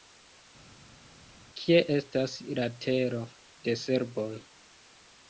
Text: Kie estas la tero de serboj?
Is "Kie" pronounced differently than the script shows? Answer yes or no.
no